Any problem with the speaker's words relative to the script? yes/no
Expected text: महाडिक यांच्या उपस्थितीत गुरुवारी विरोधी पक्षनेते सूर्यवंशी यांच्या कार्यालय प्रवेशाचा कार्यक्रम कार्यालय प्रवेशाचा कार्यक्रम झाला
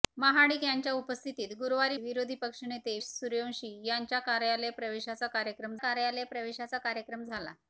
no